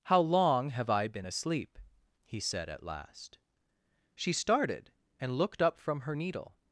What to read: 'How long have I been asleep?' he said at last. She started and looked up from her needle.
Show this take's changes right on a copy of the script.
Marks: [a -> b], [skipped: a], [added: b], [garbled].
'How long have I been asleep?' he said at last. She started and looked up from her needle.